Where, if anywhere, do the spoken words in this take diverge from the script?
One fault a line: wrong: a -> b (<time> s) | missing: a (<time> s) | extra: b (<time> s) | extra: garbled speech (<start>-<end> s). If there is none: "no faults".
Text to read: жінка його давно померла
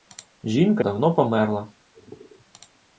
missing: його (0.8 s)